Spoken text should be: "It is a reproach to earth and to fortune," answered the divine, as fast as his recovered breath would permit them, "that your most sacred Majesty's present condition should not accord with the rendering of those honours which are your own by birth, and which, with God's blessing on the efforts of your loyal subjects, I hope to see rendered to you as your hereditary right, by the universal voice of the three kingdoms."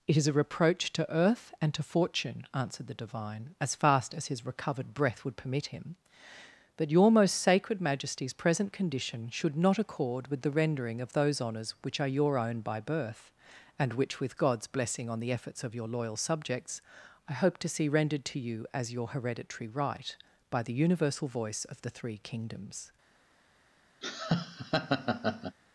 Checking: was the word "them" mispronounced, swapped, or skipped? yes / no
yes